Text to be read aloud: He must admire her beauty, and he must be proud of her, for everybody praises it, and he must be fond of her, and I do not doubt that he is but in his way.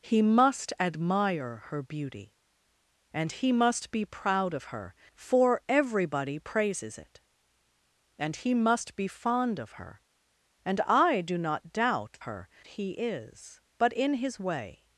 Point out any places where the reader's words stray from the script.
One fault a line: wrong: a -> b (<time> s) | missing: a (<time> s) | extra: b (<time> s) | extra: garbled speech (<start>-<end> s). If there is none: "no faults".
wrong: that -> her (12.2 s)